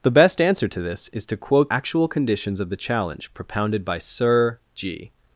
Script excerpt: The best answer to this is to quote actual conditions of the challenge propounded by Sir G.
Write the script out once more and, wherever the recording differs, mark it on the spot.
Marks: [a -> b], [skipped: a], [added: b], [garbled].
The best answer to this is to quote actual conditions of the challenge propounded by Sir G.